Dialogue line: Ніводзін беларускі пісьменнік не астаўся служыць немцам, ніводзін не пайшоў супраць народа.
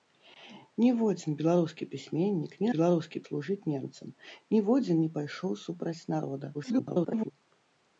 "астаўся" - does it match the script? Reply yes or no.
no